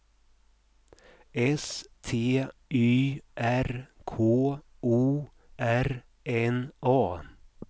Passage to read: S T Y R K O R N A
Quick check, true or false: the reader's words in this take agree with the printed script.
true